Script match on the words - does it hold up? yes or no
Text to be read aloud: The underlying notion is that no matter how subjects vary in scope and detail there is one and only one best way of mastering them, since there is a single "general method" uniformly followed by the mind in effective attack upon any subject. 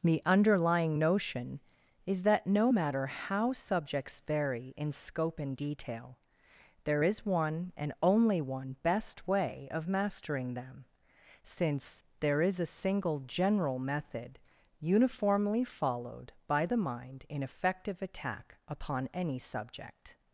yes